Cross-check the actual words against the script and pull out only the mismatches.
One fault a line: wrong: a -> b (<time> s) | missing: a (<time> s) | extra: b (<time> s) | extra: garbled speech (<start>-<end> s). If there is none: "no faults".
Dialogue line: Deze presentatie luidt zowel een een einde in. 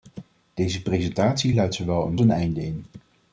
no faults